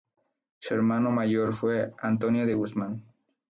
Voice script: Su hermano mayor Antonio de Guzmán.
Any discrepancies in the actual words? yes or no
yes